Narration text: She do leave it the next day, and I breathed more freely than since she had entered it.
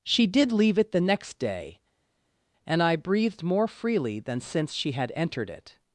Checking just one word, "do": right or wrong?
wrong